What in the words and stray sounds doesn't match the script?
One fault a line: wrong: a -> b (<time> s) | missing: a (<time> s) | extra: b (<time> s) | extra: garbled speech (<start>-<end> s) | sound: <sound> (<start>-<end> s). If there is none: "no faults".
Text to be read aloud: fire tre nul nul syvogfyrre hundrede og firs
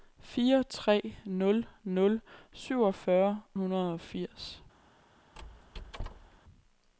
sound: squeak (5.3-6.4 s)